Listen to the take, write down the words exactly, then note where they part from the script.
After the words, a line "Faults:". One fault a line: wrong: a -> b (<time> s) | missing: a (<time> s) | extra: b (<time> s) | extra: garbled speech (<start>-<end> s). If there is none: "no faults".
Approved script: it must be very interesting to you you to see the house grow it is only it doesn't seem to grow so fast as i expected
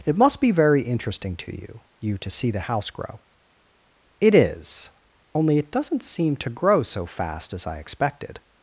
it must be very interesting to you you to see the house grow it is only it doesn't seem to grow so fast as i expected
Faults:
no faults